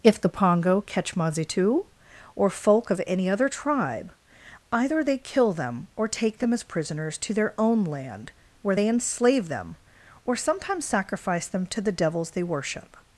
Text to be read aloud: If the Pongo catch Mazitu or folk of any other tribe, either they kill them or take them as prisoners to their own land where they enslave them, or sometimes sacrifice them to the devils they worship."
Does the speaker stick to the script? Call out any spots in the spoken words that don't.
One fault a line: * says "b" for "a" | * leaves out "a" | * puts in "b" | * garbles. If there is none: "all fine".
all fine